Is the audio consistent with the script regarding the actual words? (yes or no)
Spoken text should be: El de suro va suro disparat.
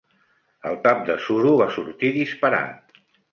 no